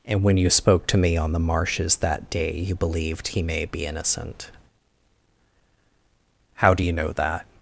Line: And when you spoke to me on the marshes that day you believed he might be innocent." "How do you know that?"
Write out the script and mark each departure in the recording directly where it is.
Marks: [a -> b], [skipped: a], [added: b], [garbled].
And when you spoke to me on the marshes that day you believed he [might -> may] be innocent." "How do you know that?"